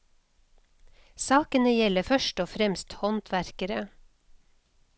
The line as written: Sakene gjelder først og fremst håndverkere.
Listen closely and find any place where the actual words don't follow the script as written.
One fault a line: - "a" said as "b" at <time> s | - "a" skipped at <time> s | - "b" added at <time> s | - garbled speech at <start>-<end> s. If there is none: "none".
none